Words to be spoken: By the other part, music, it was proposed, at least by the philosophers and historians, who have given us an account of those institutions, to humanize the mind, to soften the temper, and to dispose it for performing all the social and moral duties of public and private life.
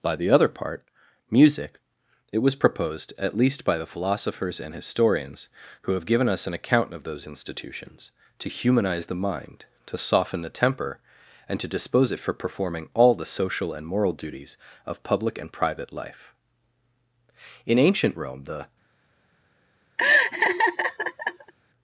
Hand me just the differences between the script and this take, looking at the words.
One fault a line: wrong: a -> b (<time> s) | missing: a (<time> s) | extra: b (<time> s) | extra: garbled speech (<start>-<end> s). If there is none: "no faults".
extra: In ancient Rome the (17.7 s)